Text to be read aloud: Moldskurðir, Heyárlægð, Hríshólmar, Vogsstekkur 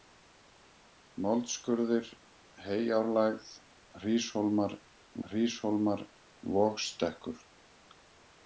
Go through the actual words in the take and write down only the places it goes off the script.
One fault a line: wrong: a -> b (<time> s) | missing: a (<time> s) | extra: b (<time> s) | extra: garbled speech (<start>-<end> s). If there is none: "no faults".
extra: Hríshólmar (5.3 s)